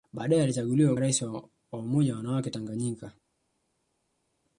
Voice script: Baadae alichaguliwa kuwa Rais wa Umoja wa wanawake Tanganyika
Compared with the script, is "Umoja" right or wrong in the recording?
right